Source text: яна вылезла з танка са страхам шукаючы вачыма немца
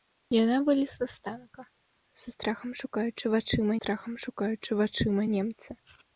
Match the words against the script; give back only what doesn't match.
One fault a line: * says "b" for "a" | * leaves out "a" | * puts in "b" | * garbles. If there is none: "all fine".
* puts in "страхам шукаючы вачыма"